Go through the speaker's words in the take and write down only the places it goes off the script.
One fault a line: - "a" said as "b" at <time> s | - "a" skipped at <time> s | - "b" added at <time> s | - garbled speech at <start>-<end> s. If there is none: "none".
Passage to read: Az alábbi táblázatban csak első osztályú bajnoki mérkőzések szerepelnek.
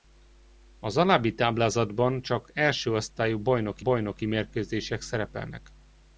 - "bajnoki" added at 3.8 s